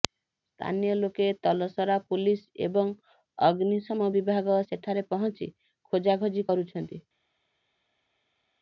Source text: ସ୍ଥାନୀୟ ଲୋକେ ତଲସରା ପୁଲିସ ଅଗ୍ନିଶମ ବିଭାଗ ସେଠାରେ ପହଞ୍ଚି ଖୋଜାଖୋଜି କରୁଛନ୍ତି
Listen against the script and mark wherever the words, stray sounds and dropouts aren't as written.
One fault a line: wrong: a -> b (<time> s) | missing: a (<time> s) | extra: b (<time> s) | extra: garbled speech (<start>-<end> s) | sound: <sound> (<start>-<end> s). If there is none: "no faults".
extra: ଏବଂ (2.7 s)